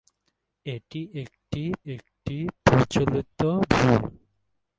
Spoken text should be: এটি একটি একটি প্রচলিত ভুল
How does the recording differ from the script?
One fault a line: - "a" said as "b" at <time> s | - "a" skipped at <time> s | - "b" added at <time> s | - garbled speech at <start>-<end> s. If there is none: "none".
none